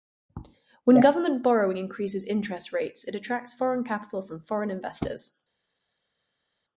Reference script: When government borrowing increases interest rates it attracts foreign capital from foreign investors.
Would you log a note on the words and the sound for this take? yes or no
no